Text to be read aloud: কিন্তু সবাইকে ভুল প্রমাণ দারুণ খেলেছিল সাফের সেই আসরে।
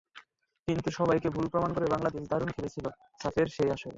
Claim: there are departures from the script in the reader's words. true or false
true